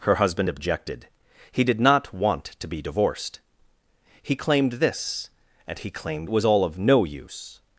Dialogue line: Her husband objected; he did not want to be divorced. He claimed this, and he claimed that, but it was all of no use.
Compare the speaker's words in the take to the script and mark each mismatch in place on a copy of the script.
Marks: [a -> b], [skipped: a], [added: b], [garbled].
Her husband objected; he did not want to be divorced. He claimed this, and he claimed [skipped: that, but it] was all of no use.